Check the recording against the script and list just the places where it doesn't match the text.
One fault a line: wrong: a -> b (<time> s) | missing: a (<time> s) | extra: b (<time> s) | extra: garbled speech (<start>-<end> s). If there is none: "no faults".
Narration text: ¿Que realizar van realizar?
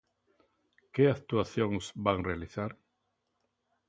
wrong: realizar -> actuacións (1.1 s)